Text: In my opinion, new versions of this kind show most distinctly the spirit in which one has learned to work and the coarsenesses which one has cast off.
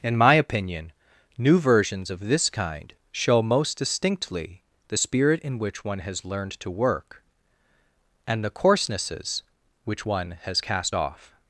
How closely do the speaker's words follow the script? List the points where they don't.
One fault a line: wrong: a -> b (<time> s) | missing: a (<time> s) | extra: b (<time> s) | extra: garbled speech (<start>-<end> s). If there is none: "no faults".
no faults